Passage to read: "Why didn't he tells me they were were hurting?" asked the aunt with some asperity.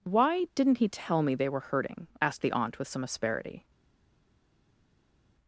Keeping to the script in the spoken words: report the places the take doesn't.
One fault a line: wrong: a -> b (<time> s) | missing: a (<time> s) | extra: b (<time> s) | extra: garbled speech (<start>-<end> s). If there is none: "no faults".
wrong: tells -> tell (0.9 s)
missing: were (1.6 s)